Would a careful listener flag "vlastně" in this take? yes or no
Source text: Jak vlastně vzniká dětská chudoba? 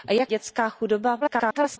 yes